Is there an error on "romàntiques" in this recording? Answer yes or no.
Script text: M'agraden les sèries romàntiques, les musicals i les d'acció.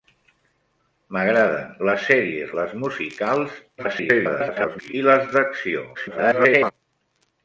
yes